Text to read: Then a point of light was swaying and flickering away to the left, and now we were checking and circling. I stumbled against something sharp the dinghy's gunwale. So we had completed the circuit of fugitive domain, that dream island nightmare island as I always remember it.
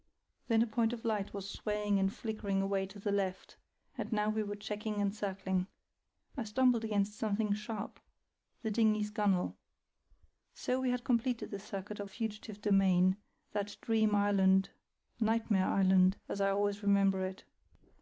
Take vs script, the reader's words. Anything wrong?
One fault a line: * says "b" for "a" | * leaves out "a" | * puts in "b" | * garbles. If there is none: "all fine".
all fine